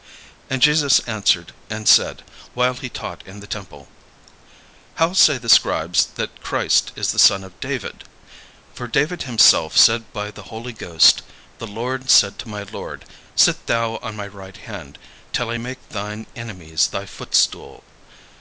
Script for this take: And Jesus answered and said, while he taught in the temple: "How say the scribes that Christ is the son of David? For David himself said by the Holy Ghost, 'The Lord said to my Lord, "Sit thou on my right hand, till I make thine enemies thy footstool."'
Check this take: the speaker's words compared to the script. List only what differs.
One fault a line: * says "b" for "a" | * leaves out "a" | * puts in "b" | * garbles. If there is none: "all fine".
all fine